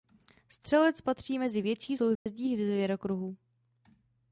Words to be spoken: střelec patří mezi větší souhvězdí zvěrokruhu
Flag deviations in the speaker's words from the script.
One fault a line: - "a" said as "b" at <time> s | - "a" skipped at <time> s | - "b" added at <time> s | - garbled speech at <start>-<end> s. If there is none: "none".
none